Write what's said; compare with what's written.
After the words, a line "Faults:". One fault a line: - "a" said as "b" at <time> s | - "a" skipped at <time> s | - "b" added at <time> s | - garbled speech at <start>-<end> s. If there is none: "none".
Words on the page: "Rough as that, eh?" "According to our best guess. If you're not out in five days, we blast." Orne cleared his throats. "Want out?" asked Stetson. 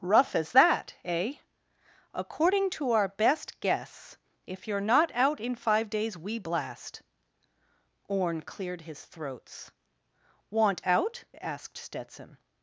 "Rough as that, eh?" "According to our best guess. If you're not out in five days, we blast." Orne cleared his throats. "Want out?" asked Stetson.
Faults:
none